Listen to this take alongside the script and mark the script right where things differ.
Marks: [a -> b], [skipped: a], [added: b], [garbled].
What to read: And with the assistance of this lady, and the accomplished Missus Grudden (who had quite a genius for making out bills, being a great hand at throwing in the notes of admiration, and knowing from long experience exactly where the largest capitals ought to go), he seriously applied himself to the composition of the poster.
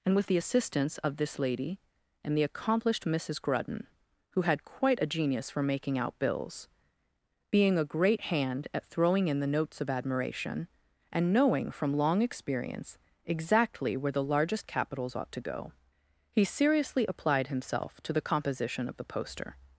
And with the assistance of this lady, and the accomplished Missus Grudden (who had quite a genius for making out bills, being a great hand at throwing in the notes of admiration, and knowing from long experience exactly where the largest capitals ought to go), he seriously applied himself to the composition of the poster.